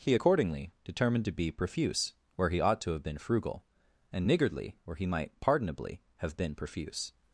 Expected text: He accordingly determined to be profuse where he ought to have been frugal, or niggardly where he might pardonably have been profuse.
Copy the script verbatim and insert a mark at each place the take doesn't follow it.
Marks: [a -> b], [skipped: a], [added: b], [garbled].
He accordingly determined to be profuse where he ought to have been frugal, [or -> and] niggardly where he might pardonably have been profuse.